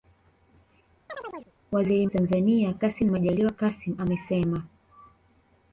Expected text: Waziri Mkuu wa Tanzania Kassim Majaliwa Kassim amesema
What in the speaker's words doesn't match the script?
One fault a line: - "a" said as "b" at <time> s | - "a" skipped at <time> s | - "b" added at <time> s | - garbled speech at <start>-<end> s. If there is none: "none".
- "Mkuu wa" skipped at 2.1 s